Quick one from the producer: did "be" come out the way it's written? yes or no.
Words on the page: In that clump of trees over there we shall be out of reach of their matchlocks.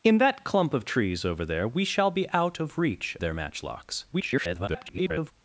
yes